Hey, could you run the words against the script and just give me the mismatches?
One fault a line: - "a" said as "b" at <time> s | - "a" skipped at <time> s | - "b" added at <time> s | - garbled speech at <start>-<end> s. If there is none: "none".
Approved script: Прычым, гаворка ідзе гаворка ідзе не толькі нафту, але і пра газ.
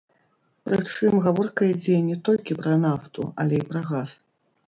- "гаворка ідзе" skipped at 2.0 s
- "пра" added at 2.6 s